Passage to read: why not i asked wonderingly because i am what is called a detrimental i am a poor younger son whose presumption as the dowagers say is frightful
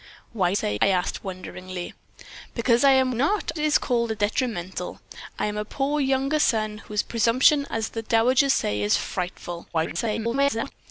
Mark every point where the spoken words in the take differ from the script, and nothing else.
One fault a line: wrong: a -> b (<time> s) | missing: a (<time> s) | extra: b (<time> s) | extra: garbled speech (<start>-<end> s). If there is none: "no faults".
wrong: not -> say (0.5 s)
wrong: what -> not (3.1 s)
extra: garbled speech (9.7-10.7 s)